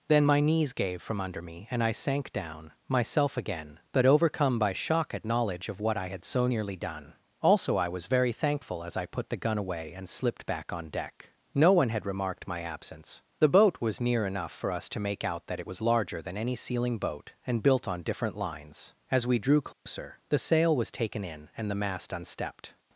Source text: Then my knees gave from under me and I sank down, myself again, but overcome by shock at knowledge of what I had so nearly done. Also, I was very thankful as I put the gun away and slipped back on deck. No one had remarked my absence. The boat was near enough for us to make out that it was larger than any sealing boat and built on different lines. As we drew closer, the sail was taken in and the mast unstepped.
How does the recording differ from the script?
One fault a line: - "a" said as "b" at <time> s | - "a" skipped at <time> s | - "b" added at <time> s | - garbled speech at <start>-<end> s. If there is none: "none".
none